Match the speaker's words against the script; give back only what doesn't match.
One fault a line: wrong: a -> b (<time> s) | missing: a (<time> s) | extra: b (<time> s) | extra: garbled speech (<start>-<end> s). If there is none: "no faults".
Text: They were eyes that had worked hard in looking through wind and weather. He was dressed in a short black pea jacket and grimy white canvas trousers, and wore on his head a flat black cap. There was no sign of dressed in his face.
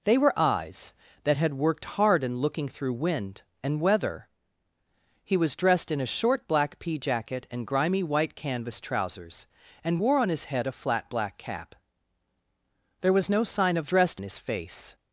no faults